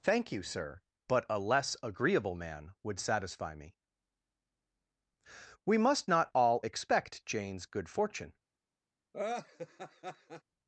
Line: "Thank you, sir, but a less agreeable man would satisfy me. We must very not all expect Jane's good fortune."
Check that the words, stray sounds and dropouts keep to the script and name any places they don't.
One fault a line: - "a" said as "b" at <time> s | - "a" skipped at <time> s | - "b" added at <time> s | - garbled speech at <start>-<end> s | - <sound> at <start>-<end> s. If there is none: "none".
- "very" skipped at 6.1 s
- laugh at 9.1-10.4 s